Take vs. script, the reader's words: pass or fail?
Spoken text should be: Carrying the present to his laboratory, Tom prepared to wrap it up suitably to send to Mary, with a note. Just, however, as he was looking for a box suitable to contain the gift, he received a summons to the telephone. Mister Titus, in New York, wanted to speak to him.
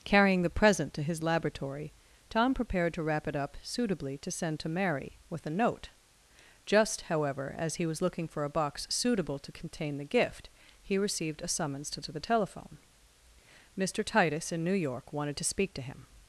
fail